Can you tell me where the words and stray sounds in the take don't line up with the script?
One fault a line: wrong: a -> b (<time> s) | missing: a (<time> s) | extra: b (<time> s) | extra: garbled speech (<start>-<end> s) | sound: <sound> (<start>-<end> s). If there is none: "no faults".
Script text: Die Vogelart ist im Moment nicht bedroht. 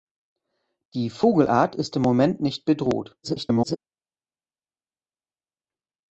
extra: garbled speech (3.2-3.8 s)